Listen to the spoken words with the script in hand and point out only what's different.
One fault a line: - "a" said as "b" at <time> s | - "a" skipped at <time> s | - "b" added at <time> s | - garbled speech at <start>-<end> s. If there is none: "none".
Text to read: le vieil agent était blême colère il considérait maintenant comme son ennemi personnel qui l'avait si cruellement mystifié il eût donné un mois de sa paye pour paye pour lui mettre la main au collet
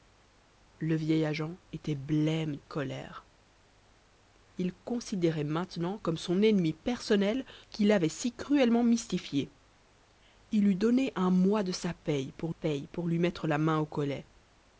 none